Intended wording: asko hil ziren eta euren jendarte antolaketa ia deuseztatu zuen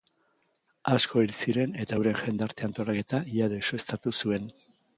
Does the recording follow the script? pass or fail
pass